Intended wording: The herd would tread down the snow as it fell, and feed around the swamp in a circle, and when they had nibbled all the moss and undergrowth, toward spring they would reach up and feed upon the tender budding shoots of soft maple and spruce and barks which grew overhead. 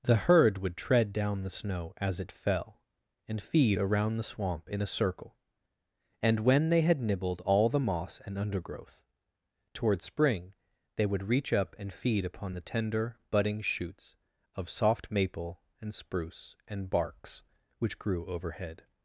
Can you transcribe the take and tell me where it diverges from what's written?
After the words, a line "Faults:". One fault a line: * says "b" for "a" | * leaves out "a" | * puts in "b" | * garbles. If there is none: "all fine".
The herd would tread down the snow as it fell, and feed around the swamp in a circle, and when they had nibbled all the moss and undergrowth, toward spring they would reach up and feed upon the tender budding shoots of soft maple and spruce and barks which grew overhead.
Faults:
all fine